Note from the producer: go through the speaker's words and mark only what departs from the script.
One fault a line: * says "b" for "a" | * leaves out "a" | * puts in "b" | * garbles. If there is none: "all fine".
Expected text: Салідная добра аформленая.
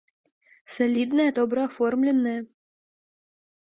all fine